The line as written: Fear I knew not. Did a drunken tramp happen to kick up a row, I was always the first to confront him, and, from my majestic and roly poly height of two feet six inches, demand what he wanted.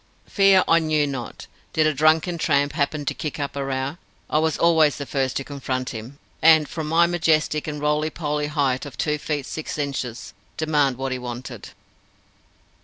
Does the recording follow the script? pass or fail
pass